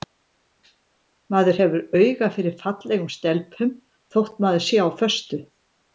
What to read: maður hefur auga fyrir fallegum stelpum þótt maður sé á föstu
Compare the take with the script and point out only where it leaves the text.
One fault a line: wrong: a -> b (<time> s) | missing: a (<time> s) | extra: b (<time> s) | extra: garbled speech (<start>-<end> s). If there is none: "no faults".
no faults